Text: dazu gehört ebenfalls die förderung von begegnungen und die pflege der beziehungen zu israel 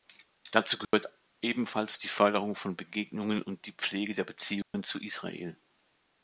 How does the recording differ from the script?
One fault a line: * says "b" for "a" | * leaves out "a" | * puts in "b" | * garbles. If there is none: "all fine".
all fine